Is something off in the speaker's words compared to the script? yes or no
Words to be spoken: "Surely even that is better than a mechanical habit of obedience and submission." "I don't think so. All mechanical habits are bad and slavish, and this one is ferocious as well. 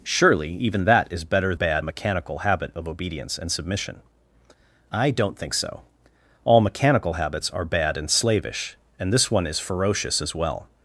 yes